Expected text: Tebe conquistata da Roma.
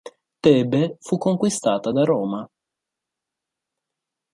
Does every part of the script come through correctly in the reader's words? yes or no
no